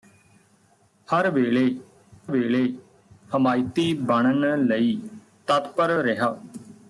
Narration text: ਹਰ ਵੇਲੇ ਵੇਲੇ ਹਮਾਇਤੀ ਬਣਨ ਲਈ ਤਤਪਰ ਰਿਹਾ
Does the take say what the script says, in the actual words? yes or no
yes